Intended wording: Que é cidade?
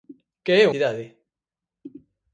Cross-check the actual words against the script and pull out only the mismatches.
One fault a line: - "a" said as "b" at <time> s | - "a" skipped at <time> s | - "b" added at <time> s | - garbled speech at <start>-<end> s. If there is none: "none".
none